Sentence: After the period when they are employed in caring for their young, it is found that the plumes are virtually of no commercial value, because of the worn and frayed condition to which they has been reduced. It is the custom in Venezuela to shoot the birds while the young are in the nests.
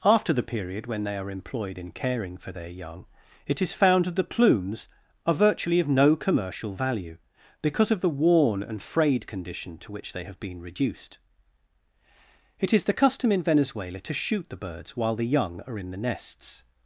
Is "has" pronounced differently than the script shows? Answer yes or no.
yes